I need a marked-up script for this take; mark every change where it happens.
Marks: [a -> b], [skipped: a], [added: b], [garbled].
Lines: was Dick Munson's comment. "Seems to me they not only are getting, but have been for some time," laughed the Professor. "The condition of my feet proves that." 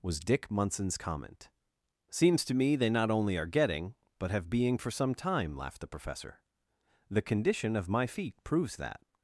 was Dick Munson's comment. "Seems to me they not only are getting, but have [been -> being] for some time," laughed the Professor. "The condition of my feet proves that."